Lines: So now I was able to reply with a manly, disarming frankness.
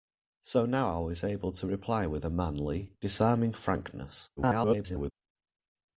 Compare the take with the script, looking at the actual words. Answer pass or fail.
fail